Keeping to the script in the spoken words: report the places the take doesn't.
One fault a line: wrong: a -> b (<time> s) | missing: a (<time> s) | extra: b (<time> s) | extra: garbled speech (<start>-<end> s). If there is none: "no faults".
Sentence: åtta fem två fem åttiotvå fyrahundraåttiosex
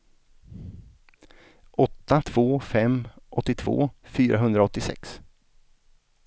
missing: fem (2.2 s)